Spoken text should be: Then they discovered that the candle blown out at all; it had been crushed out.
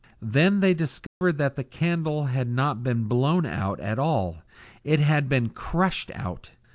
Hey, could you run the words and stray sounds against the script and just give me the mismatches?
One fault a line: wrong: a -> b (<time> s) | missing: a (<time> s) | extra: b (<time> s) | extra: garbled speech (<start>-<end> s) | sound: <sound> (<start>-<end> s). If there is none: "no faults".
sound: dropout (1.1-1.2 s)
extra: had not been (2.2 s)